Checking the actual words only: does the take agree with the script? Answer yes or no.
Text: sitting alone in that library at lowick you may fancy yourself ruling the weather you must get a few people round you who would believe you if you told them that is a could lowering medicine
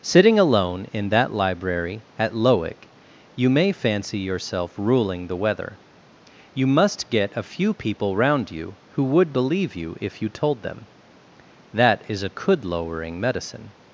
yes